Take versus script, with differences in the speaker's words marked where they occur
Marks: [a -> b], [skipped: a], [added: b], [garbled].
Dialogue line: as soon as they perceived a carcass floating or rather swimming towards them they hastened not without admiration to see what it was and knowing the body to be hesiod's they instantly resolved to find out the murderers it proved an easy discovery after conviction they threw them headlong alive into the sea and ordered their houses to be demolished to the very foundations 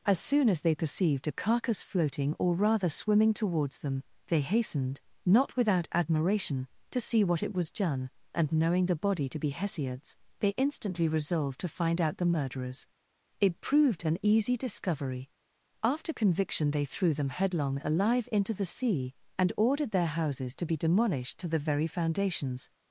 as soon as they perceived a carcass floating or rather swimming towards them they hastened not without admiration to see what it was [added: done] and knowing the body to be hesiod's they instantly resolved to find out the murderers it proved an easy discovery after conviction they threw them headlong alive into the sea and ordered their houses to be demolished to the very foundations